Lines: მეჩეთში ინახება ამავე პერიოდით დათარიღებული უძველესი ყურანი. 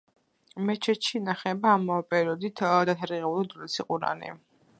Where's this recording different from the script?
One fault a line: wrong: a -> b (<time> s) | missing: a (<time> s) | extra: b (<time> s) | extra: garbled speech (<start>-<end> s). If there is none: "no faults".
no faults